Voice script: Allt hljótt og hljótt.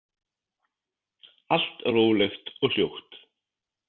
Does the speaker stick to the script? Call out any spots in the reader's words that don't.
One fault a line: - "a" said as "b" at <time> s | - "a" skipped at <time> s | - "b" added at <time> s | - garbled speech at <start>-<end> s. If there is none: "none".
- "hljótt" said as "rólegt" at 1.9 s